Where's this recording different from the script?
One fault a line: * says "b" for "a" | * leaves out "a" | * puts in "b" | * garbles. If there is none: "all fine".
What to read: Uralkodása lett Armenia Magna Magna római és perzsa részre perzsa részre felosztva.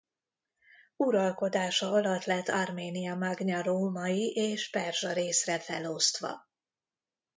* puts in "alatt"
* leaves out "Magna"
* leaves out "perzsa részre"